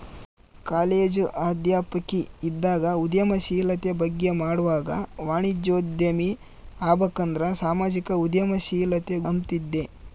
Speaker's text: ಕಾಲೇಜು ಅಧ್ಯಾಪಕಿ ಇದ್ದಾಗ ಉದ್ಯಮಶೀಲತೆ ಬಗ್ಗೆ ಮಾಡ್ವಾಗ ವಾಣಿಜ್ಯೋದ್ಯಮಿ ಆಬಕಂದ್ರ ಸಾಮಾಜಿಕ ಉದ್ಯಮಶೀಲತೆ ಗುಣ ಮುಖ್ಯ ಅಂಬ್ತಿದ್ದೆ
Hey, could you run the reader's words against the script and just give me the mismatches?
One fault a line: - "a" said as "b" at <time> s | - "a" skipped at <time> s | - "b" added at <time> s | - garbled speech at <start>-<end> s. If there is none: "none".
- "ಗುಣ ಮುಖ್ಯ" skipped at 9.2 s